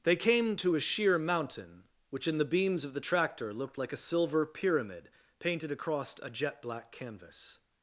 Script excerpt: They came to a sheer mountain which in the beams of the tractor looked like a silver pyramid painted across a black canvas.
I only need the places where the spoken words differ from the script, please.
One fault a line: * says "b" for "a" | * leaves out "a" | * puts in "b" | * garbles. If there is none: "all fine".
* puts in "jet"